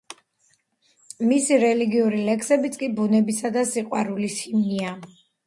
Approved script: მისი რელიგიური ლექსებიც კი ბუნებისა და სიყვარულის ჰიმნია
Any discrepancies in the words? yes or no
no